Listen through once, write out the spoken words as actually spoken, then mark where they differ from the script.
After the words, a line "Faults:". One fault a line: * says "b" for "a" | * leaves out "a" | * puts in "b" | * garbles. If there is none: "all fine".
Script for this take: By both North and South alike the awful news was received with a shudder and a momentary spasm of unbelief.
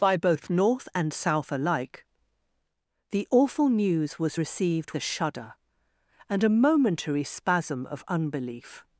By both North and South alike the awful news was received a shudder and a momentary spasm of unbelief.
Faults:
* leaves out "with"